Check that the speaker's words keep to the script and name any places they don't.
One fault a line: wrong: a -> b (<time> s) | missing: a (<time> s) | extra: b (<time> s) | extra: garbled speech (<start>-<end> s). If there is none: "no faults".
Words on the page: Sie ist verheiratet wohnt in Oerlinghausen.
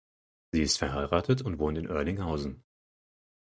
extra: und (1.4 s)